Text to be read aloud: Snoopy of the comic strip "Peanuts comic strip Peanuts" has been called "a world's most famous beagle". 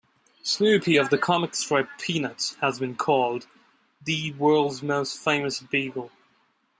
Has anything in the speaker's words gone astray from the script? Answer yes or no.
yes